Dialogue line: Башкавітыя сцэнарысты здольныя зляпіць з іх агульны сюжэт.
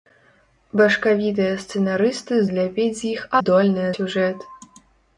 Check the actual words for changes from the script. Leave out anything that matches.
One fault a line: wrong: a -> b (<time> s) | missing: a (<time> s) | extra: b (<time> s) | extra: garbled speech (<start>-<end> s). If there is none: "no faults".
missing: здольныя (2.4 s)
wrong: агульны -> здольныя (3.4 s)